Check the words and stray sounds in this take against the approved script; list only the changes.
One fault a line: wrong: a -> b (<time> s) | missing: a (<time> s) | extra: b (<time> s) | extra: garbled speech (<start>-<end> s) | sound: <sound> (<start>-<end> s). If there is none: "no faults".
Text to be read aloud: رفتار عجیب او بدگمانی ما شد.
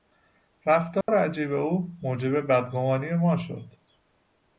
sound: dropout (1.0-1.1 s)
extra: موجب (2.0 s)